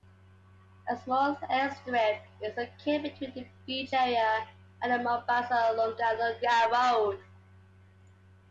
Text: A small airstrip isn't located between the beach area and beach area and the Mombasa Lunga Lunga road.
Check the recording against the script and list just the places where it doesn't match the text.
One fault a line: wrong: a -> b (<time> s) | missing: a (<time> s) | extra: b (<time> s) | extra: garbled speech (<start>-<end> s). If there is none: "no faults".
wrong: isn't -> is (2.4 s)
missing: beach area and (4.9 s)